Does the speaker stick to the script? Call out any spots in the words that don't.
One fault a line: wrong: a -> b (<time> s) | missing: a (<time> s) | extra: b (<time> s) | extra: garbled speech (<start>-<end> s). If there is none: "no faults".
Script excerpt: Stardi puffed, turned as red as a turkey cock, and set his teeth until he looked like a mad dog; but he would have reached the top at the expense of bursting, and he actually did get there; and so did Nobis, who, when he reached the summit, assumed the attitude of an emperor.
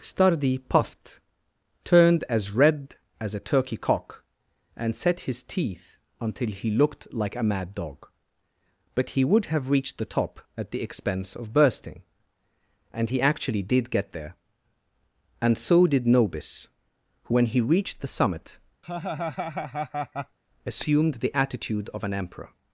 no faults